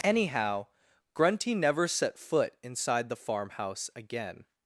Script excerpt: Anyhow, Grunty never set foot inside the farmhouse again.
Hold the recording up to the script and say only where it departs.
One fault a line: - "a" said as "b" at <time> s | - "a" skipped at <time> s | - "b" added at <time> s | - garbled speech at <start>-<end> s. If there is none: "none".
none